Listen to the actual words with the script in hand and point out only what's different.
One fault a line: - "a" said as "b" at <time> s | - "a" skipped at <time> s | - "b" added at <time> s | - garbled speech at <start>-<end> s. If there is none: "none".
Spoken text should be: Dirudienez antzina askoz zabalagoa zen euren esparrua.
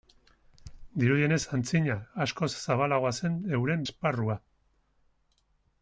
none